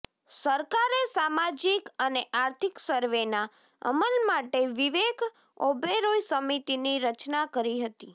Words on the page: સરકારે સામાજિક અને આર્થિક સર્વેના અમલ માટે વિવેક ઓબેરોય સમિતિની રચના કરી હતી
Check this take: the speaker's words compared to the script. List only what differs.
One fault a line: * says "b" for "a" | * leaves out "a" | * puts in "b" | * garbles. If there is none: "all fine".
all fine